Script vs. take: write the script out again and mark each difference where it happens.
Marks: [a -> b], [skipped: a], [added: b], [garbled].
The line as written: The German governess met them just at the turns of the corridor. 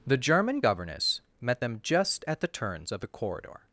The German governess met them just at the turns of the corridor.